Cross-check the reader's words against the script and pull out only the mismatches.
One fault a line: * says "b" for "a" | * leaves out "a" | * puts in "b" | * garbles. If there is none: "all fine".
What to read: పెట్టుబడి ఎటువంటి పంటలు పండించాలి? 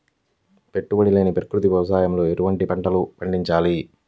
* puts in "లేని ప్రకృతి వ్యవసాయంలో"